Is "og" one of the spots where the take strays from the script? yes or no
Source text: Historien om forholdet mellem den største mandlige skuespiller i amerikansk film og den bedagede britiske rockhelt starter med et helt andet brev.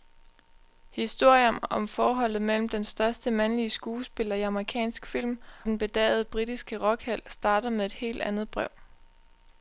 yes